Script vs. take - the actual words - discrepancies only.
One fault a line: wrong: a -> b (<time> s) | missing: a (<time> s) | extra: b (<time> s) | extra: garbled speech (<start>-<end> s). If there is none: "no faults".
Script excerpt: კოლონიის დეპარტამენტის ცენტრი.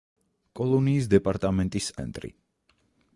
no faults